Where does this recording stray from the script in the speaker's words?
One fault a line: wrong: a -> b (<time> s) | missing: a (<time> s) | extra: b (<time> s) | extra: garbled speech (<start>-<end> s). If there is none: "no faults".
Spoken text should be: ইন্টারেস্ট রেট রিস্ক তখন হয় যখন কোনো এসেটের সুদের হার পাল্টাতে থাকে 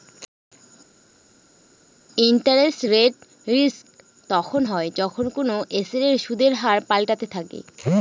no faults